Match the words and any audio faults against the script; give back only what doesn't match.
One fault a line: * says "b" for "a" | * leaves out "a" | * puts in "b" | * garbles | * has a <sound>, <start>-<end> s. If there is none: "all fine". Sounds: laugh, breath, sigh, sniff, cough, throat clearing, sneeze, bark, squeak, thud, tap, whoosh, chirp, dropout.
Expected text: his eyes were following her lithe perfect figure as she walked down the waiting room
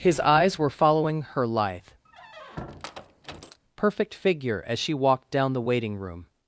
* has a squeak, 2.1-3.6 s